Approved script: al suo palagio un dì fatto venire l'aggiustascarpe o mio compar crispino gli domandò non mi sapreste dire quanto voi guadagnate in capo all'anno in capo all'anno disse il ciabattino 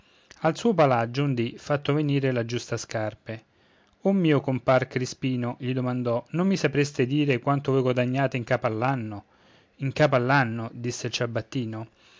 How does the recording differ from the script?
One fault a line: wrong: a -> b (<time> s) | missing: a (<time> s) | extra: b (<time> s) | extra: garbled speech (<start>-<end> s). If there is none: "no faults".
no faults